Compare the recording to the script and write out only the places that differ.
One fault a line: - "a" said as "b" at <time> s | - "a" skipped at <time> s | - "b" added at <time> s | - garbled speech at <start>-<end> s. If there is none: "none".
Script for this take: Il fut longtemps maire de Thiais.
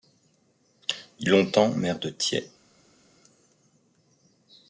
- "fut" skipped at 1.3 s